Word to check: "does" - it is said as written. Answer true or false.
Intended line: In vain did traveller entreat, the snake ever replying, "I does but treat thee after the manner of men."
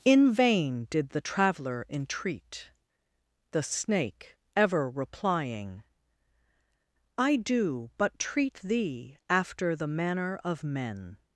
false